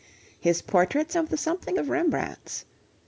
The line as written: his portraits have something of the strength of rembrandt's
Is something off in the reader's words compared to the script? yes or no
yes